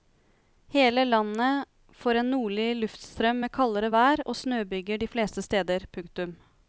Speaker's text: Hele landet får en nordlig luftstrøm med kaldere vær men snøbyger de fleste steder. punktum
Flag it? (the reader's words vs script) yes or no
yes